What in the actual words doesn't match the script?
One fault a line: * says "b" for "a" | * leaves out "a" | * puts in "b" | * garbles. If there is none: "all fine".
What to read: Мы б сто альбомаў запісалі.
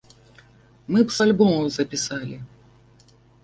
* leaves out "сто"